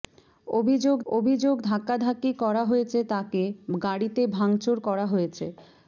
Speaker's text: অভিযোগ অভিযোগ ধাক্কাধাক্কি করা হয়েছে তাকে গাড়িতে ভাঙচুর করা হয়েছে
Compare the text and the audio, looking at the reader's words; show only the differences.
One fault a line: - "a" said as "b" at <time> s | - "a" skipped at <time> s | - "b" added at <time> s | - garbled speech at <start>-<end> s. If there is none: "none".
none